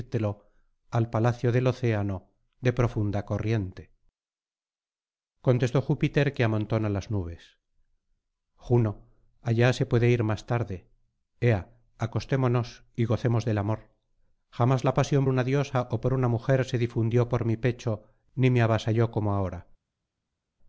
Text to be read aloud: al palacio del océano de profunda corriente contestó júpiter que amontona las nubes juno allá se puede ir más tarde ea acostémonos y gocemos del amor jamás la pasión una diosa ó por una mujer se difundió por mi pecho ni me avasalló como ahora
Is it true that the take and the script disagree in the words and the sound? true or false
false